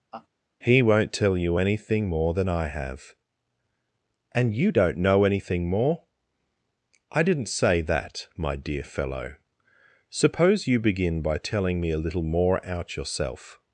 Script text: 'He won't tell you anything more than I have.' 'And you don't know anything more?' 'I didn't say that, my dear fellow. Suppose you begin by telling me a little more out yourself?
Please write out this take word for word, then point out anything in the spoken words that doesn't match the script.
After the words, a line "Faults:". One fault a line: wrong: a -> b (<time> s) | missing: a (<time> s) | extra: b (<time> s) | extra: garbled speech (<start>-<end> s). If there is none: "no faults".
'He won't tell you anything more than I have.' 'And you don't know anything more?' 'I didn't say that, my dear fellow. Suppose you begin by telling me a little more out yourself?
Faults:
no faults